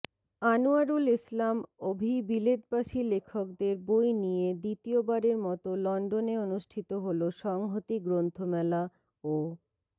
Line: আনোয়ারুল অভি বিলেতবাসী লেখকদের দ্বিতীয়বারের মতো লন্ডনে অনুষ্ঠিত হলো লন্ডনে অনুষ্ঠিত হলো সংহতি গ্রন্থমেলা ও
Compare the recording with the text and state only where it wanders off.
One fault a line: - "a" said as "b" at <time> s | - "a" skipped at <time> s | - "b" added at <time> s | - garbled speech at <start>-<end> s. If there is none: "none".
- "ইসলাম" added at 1.2 s
- "বই নিয়ে" added at 3.9 s
- "লন্ডনে অনুষ্ঠিত হলো" skipped at 7.2 s